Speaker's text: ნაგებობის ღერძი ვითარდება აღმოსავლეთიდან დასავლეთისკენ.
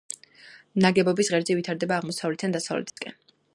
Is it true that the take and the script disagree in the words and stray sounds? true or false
true